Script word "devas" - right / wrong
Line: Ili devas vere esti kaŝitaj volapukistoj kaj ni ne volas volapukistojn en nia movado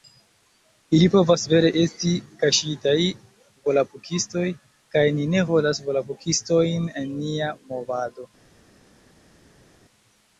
wrong